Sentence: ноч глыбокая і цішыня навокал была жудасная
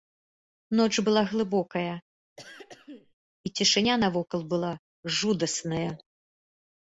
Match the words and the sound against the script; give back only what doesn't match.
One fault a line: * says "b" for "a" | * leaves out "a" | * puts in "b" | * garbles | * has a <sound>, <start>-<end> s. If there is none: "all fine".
* puts in "была"
* has a throat clearing, 2.4-3.1 s